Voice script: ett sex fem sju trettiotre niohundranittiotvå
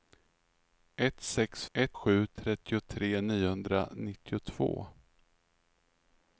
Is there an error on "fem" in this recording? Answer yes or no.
yes